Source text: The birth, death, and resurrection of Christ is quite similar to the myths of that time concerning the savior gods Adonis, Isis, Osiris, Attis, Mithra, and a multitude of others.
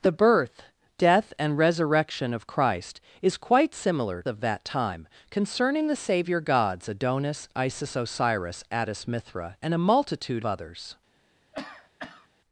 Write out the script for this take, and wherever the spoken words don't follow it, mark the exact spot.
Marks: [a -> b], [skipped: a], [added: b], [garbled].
The birth, death, and resurrection of Christ is quite similar [skipped: to the myths] of that time concerning the savior gods Adonis, Isis, Osiris, Attis, Mithra, and a multitude [skipped: of] others.